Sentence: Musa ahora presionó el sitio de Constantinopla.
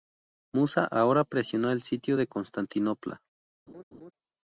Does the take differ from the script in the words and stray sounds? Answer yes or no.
yes